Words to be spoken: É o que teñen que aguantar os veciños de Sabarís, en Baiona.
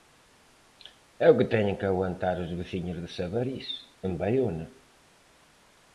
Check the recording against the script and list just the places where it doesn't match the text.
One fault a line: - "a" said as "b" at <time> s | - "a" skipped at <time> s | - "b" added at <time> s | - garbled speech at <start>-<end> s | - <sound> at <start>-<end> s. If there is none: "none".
none